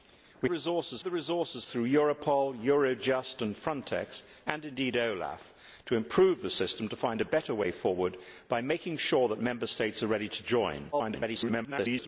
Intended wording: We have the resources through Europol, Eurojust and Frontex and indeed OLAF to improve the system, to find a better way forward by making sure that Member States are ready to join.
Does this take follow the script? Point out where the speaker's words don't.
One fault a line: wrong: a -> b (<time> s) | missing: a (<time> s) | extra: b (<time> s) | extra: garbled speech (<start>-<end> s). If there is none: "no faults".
wrong: have -> resources (0.5 s)
extra: garbled speech (10.9-12.1 s)